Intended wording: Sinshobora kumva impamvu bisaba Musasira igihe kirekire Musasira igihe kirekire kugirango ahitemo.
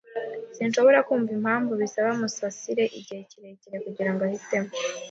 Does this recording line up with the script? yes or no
no